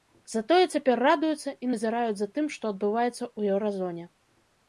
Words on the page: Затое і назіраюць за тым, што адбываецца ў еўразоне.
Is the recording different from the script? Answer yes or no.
yes